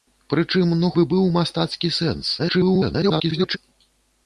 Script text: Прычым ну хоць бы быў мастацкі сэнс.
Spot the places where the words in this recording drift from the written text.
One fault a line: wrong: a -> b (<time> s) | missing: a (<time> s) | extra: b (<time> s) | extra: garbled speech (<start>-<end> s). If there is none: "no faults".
missing: хоць (0.9 s)
extra: garbled speech (2.4-3.6 s)